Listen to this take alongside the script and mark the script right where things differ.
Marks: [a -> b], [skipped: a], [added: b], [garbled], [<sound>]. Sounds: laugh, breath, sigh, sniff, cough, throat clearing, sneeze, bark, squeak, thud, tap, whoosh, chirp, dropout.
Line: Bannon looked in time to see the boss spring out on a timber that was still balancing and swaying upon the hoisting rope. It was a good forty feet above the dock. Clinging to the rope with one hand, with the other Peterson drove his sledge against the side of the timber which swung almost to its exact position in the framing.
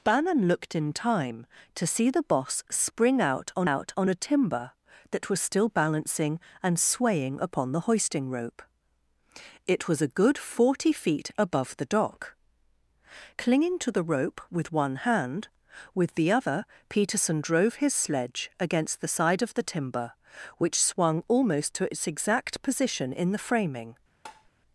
Bannon looked in time to see the boss spring out on [added: out on] a timber that was still balancing and swaying upon the hoisting rope. It was a good forty feet above the dock. Clinging to the rope with one hand, with the other Peterson drove his sledge against the side of the timber which swung almost to its exact position in the framing. [tap]